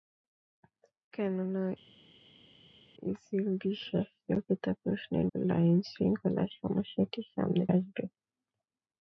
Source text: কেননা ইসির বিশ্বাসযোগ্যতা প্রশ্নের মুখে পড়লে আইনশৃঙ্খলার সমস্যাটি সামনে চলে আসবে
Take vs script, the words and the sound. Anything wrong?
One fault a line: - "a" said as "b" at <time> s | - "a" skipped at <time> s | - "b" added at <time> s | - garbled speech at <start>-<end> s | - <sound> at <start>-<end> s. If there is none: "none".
- "মুখে" skipped at 5.3 s
- "চলে" skipped at 7.6 s